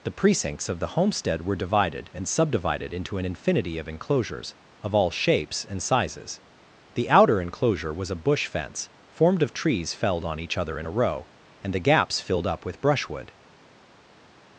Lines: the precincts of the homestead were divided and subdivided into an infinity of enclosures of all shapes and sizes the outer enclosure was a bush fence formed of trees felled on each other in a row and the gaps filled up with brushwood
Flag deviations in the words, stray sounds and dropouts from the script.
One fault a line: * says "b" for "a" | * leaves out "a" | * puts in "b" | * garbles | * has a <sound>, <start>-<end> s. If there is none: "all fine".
all fine